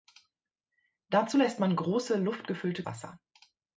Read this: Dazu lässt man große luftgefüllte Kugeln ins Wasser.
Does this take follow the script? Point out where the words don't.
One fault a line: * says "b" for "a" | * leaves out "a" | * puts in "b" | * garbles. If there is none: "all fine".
* leaves out "Kugeln ins"